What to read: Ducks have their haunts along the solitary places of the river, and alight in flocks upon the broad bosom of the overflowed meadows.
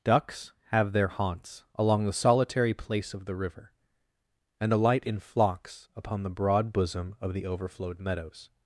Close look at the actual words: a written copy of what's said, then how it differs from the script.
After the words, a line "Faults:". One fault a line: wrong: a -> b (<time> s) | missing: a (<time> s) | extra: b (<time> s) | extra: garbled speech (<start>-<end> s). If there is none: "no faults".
Ducks have their haunts along the solitary place of the river, and alight in flocks upon the broad bosom of the overflowed meadows.
Faults:
wrong: places -> place (2.7 s)